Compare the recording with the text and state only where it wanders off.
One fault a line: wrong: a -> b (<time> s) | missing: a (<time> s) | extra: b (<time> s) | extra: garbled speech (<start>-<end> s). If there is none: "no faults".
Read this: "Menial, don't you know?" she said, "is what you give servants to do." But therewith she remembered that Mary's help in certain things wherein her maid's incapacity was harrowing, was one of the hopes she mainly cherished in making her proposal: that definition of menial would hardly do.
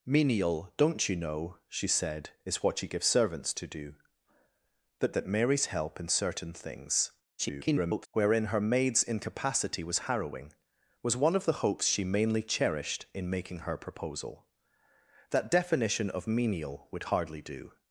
missing: therewith she remembered (5.1 s)
extra: garbled speech (7.4-8.1 s)